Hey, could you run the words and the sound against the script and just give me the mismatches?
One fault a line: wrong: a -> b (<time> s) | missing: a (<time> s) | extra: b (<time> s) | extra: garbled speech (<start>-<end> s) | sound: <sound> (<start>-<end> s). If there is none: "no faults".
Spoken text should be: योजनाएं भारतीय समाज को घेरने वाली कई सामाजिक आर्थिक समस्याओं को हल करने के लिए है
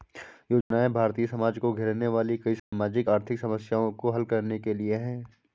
sound: dropout (0.6-0.7 s)
sound: dropout (2.6-2.7 s)